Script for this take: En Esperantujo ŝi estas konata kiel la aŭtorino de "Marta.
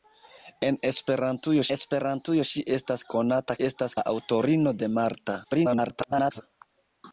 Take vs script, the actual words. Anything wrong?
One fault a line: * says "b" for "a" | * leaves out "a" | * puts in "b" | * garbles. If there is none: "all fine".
* puts in "Esperantujo"
* says "estas" for "kiel"
* garbles